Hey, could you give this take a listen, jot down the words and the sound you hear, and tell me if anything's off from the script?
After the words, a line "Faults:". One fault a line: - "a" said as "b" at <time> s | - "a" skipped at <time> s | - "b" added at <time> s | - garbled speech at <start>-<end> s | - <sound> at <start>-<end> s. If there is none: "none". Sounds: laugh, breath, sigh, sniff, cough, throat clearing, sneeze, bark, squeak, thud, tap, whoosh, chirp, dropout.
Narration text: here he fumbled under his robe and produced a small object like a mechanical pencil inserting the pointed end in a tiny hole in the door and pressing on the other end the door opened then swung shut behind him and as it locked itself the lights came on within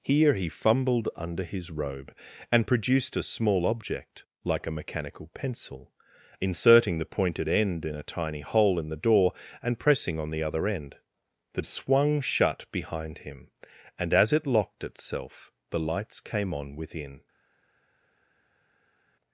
here he fumbled under his robe and produced a small object like a mechanical pencil inserting the pointed end in a tiny hole in the door and pressing on the other end the swung shut behind him and as it locked itself the lights came on within
Faults:
- "door opened then" skipped at 11.6 s